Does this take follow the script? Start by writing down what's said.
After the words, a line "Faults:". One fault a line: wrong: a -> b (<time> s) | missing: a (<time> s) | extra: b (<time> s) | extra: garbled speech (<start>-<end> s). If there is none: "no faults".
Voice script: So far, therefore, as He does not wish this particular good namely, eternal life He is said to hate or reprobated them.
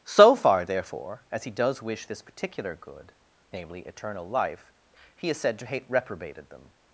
So far, therefore, as He does wish this particular good namely, eternal life He is said to hate reprobated them.
Faults:
missing: not (1.8 s)
missing: or (5.8 s)